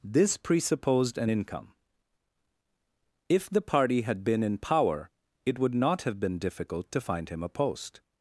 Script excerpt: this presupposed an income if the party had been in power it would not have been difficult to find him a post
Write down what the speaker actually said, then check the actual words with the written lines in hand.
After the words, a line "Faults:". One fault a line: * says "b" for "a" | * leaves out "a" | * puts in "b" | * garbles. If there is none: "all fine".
this presupposed an income if the party had been in power it would not have been difficult to find him a post
Faults:
all fine